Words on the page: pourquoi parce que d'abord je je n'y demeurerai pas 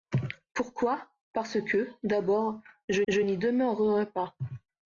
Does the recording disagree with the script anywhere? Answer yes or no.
no